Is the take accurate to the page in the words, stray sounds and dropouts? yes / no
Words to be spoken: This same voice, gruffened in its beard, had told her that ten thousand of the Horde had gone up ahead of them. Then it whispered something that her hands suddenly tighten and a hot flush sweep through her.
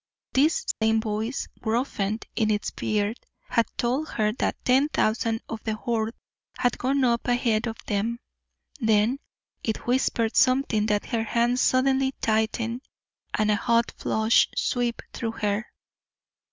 no